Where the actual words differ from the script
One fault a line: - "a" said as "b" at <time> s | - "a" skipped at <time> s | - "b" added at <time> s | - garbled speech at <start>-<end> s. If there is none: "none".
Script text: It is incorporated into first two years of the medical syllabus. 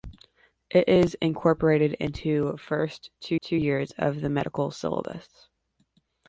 - "two" added at 3.4 s